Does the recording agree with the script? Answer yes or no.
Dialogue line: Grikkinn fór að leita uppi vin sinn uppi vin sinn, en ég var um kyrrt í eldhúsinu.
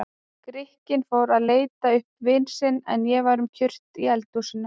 no